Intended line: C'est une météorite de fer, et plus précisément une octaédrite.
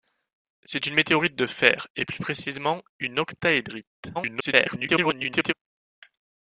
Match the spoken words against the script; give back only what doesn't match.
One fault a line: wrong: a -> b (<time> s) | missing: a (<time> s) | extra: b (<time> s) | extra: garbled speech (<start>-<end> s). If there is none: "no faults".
extra: garbled speech (4.1-5.5 s)